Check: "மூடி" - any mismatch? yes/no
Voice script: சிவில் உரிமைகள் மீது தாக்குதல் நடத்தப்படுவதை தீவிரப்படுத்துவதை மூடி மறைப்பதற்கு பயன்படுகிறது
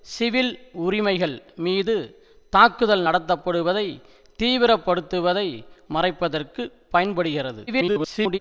yes